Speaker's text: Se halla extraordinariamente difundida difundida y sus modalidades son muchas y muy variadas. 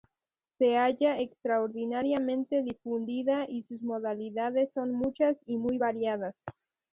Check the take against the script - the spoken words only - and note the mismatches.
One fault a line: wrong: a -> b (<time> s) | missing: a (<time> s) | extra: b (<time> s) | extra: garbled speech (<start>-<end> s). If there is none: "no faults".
missing: difundida (3.5 s)